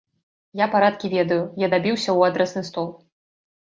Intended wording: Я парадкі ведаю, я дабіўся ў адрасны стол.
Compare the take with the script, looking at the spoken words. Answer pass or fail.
pass